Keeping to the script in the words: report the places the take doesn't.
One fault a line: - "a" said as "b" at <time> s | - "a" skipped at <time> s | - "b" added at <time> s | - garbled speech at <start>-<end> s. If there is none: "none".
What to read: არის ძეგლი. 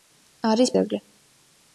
none